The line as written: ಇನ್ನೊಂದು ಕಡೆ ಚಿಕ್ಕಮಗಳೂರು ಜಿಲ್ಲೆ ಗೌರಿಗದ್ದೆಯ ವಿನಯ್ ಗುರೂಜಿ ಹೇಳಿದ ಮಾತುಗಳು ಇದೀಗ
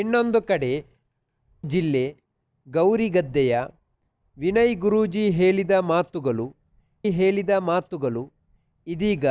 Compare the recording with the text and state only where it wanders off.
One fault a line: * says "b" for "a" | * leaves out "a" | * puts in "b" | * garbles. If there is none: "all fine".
* leaves out "ಚಿಕ್ಕಮಗಳೂರು"
* puts in "ಹೇಳಿದ ಮಾತುಗಳು"